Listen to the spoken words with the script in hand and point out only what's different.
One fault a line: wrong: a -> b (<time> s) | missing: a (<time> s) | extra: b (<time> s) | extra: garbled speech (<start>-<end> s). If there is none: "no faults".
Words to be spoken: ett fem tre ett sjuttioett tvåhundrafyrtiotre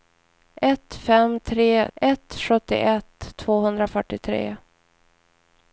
no faults